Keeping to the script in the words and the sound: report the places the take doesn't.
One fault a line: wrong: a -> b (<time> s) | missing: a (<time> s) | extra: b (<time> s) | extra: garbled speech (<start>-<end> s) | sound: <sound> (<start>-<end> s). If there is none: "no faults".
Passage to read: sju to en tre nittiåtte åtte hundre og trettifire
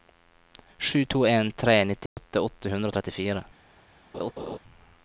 sound: dropout (2.1-2.2 s)
sound: laugh (4.1-4.6 s)